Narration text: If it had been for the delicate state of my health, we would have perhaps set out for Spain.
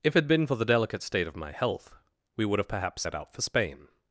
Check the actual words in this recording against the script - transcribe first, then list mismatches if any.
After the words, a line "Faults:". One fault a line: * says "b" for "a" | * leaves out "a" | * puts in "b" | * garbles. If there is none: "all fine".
If it had been for the delicate state of my health, we would have perhaps set out for Spain.
Faults:
all fine